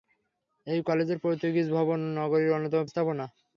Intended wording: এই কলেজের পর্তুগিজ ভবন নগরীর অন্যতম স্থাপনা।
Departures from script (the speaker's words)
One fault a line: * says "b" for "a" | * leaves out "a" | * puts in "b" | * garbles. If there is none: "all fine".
all fine